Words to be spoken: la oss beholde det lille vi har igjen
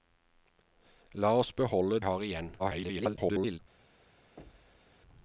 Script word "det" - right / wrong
wrong